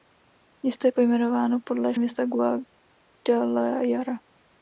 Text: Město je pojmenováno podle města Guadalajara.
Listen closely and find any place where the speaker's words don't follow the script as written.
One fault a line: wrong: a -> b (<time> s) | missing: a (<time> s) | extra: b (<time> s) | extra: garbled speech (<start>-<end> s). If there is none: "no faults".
no faults